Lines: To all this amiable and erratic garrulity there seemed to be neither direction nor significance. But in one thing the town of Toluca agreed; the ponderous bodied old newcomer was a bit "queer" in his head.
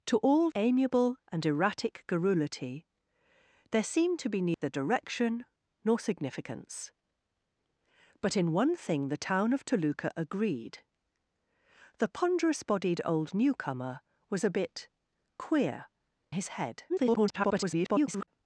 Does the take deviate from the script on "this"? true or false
true